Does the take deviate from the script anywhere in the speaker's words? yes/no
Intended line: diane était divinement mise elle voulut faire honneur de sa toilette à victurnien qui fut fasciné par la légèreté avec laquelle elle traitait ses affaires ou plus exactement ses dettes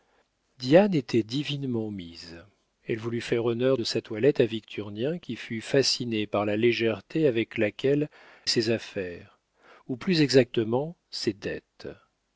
yes